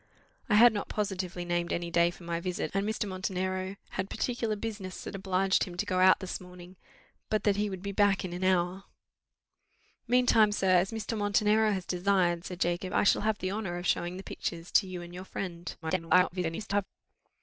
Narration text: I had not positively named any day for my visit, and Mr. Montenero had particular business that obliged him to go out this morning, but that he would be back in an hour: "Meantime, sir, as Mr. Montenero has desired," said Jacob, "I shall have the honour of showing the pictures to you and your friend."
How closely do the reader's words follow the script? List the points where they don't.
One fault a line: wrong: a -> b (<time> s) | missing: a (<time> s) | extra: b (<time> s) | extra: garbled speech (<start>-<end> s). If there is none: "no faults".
extra: garbled speech (15.8-16.9 s)